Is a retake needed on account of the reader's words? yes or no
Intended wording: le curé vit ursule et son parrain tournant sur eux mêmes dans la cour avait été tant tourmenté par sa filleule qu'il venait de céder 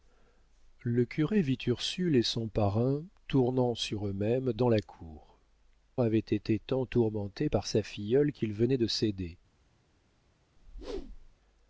no